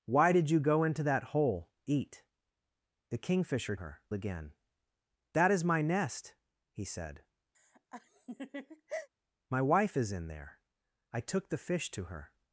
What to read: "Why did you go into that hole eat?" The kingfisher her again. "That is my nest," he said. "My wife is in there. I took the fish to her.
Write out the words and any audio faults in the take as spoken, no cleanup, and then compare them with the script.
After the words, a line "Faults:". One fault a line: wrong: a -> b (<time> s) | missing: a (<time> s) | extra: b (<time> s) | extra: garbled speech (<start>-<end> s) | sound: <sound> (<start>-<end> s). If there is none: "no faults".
"Why did you go into that hole eat?" The kingfisher her again. "That is my nest," he said. "My wife is in there. I took the fish to her.
Faults:
sound: laugh (7.5-9.1 s)